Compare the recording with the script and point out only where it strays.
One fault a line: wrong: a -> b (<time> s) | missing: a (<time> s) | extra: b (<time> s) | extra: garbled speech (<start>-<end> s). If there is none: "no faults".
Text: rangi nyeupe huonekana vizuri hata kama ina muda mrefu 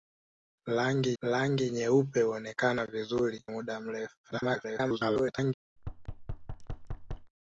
extra: rangi (1.2 s)
missing: hata kama ina (3.4 s)
extra: garbled speech (4.2-5.5 s)